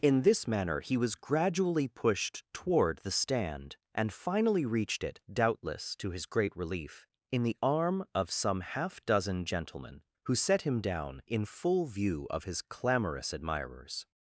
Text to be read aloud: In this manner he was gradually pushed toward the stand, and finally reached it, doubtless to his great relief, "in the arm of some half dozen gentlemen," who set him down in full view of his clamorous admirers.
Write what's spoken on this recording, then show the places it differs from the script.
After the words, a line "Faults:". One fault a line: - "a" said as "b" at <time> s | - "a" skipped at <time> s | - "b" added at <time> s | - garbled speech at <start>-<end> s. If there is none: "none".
In this manner he was gradually pushed toward the stand, and finally reached it, doubtless to his great relief, "in the arm of some half dozen gentlemen," who set him down in full view of his clamorous admirers.
Faults:
none